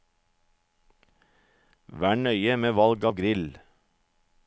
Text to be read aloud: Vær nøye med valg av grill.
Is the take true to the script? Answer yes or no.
yes